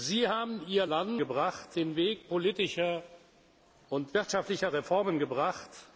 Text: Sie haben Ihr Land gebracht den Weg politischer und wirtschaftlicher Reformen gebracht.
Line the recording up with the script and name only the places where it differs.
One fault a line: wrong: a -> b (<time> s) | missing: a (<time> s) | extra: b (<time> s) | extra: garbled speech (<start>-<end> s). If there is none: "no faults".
no faults